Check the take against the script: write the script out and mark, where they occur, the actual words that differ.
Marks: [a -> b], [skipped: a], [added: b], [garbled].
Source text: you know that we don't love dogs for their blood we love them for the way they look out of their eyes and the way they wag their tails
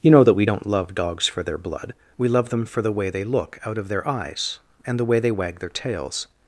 you know that we don't love dogs for their blood we love them for the way they look out of their eyes and the way they wag their tails